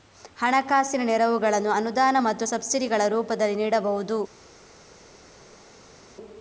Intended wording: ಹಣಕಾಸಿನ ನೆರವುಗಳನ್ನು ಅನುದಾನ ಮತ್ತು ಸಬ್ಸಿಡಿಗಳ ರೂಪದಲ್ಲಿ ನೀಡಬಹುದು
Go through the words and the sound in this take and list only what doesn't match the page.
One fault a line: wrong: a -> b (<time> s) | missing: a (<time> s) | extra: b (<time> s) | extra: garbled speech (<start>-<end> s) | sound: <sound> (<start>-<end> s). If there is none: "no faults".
no faults